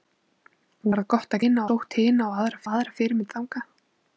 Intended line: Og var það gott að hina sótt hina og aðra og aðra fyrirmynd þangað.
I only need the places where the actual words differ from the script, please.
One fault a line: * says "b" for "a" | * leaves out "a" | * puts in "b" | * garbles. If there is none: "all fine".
all fine